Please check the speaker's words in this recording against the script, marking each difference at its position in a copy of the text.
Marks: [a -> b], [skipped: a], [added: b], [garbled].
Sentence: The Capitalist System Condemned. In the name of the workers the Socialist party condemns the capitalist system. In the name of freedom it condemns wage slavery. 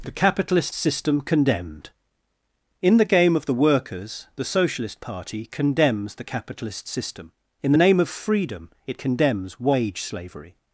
The Capitalist System Condemned. In the [name -> game] of the workers the Socialist party condemns the capitalist system. In the name of freedom it condemns wage slavery.